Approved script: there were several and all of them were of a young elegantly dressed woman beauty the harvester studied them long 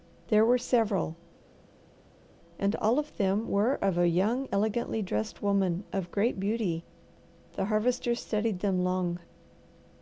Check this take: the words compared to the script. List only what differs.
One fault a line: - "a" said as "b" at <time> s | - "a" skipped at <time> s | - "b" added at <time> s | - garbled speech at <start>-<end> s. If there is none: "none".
- "of great" added at 5.9 s